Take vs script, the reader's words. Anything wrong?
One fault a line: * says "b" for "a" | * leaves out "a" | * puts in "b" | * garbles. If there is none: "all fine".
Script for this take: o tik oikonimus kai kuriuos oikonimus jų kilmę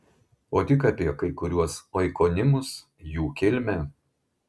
* says "apie" for "oikonimus"